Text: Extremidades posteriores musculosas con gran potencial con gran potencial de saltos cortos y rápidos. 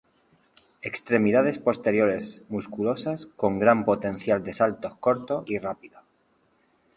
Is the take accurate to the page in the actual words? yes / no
no